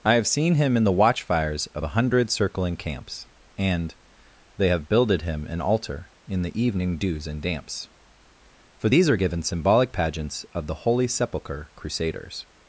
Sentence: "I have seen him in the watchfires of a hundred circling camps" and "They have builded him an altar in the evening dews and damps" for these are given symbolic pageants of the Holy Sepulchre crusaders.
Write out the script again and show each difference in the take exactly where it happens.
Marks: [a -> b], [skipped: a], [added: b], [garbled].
"I have seen him in the watchfires of a hundred circling camps" and "They have builded him an altar in the evening dews and damps" for these are given symbolic pageants of the Holy Sepulchre crusaders.